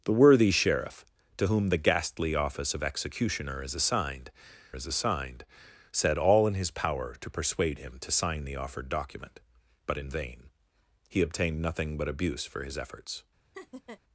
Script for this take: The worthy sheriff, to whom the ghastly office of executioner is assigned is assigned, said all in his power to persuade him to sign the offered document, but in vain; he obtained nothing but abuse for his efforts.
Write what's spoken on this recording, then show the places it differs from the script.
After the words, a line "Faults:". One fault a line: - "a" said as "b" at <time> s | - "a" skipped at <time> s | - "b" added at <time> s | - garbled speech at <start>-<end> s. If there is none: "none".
The worthy sheriff, to whom the ghastly office of executioner is assigned is assigned, said all in his power to persuade him to sign the offered document, but in vain; he obtained nothing but abuse for his efforts.
Faults:
none